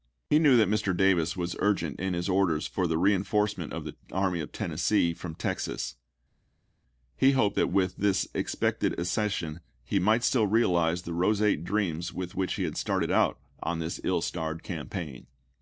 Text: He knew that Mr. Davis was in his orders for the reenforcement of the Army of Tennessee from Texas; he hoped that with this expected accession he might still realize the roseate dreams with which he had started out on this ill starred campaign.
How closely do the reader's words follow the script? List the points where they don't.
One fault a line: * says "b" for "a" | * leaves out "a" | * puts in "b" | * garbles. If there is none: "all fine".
* puts in "urgent"